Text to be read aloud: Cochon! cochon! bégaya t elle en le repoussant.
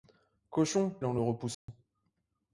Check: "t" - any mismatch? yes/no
yes